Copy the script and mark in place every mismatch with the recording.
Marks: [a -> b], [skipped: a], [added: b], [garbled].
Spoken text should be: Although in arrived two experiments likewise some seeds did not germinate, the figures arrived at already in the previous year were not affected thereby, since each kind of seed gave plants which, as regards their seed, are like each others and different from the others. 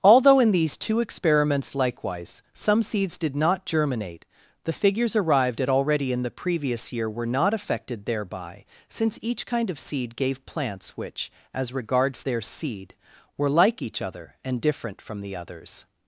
Although in [arrived -> these] two experiments likewise some seeds did not germinate, the figures arrived at already in the previous year were not affected thereby, since each kind of seed gave plants which, as regards their seed, [are -> were] like each [others -> other] and different from the others.